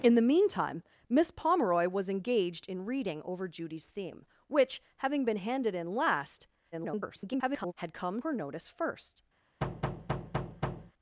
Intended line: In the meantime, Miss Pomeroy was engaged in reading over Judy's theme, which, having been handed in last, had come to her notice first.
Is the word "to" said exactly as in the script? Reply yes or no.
no